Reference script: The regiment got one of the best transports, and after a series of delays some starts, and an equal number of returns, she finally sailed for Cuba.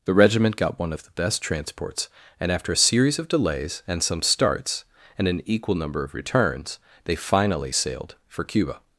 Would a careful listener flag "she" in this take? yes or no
yes